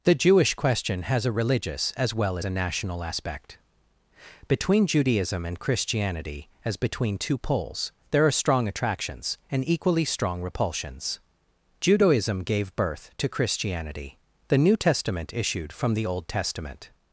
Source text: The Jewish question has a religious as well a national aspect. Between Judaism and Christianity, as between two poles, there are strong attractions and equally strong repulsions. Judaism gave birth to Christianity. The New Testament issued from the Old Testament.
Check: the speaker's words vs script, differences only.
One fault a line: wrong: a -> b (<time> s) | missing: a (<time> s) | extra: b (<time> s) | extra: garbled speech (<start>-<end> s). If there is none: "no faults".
no faults